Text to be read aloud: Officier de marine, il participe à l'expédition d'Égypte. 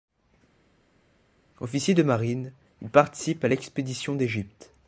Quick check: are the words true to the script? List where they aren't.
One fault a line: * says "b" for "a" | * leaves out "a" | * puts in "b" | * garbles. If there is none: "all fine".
all fine